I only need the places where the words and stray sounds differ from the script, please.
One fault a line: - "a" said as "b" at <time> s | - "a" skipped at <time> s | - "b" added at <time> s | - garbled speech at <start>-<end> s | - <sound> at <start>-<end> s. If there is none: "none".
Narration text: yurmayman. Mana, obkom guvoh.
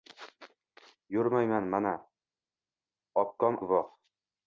none